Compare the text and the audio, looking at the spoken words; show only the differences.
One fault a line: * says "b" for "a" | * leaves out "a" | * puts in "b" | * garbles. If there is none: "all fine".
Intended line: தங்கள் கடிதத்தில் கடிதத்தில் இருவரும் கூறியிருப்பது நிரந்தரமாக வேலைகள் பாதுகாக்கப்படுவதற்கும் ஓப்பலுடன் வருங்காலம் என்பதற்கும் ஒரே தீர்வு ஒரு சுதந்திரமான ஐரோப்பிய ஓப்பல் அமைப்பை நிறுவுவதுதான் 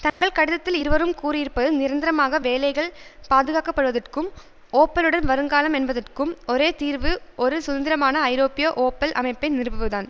* leaves out "கடிதத்தில்"